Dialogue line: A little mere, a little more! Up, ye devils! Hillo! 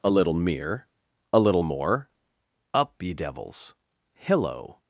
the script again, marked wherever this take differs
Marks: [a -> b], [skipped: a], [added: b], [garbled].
A little mere, a little more! Up, ye devils! Hillo!